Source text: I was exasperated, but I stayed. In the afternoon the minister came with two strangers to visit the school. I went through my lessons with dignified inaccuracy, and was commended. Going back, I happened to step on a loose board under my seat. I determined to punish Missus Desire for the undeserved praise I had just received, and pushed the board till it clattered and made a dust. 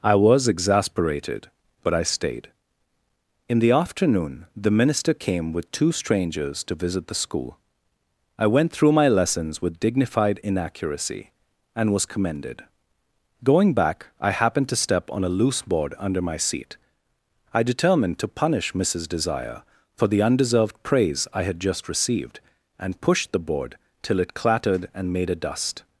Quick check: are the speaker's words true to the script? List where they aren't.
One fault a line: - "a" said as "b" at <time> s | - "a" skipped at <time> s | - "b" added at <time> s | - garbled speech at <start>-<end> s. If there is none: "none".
none